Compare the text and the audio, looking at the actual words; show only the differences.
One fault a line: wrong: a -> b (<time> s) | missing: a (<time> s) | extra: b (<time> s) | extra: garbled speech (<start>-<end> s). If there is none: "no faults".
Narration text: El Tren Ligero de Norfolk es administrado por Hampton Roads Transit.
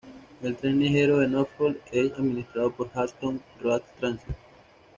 no faults